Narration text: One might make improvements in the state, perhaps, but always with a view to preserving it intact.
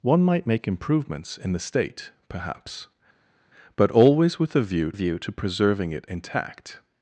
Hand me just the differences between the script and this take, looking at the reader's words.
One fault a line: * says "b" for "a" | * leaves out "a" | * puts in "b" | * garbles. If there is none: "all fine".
* puts in "view"